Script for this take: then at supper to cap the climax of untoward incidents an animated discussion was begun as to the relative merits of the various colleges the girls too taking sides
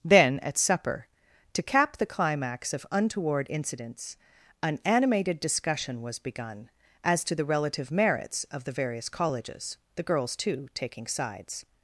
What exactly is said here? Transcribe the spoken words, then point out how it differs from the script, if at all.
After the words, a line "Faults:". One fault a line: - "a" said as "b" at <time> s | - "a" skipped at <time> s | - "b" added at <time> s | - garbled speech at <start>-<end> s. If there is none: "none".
then at supper to cap the climax of untoward incidents an animated discussion was begun as to the relative merits of the various colleges the girls too taking sides
Faults:
none